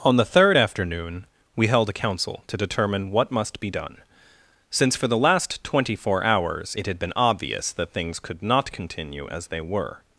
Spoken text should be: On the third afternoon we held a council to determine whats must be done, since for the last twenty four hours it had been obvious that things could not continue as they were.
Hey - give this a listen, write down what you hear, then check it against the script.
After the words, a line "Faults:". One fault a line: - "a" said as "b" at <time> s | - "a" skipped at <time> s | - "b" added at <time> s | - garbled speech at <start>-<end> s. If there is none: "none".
On the third afternoon we held a council to determine what must be done, since for the last twenty four hours it had been obvious that things could not continue as they were.
Faults:
- "whats" said as "what" at 3.1 s